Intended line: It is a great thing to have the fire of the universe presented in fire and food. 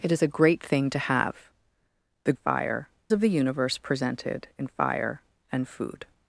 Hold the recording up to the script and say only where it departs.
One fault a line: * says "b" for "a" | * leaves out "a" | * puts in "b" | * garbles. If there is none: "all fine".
all fine